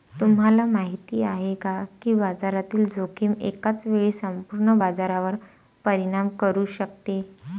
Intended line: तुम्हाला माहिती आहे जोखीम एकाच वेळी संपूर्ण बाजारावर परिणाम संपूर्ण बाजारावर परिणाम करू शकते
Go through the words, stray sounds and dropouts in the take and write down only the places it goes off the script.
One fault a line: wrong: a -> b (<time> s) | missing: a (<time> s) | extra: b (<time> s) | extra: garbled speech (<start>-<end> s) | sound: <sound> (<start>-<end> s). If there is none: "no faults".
extra: का की बाजारातील (1.6 s)
missing: संपूर्ण बाजारावर परिणाम (6.3 s)